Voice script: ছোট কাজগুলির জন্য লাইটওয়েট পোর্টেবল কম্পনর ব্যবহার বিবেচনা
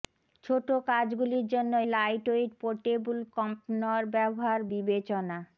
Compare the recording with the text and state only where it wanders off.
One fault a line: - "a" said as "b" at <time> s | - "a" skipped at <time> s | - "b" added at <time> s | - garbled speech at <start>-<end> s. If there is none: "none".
none